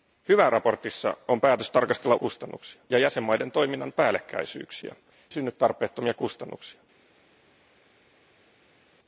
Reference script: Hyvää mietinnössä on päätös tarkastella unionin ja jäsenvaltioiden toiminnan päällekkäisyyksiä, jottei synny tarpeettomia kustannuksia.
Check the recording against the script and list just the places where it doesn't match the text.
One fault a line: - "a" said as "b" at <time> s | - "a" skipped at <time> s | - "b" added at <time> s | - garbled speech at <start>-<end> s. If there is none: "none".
- "unionin" said as "kustannuksia" at 2.1 s
- "jottei" skipped at 4.9 s